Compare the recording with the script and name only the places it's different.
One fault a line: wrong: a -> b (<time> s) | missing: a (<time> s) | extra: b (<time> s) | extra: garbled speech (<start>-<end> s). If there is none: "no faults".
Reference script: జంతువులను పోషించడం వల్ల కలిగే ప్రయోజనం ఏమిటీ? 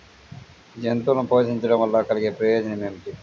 no faults